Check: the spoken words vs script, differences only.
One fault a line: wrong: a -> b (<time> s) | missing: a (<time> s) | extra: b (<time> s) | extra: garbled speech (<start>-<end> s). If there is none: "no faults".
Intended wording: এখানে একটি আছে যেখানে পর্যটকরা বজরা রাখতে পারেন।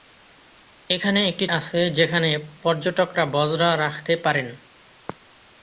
no faults